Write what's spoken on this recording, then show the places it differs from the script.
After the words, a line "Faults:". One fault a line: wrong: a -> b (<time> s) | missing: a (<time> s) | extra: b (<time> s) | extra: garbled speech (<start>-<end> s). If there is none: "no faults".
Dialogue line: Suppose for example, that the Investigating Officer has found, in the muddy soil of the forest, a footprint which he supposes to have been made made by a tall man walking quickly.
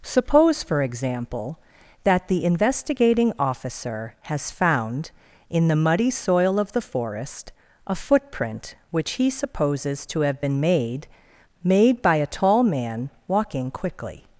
Suppose for example, that the Investigating Officer has found, in the muddy soil of the forest, a footprint which he supposes to have been made made by a tall man walking quickly.
Faults:
no faults